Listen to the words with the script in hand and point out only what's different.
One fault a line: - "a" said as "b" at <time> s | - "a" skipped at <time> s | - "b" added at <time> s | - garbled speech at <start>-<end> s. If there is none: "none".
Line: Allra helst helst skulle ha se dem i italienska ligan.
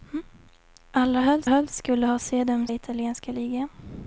none